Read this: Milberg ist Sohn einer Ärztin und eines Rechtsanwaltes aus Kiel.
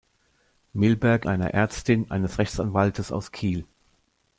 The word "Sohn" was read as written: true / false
false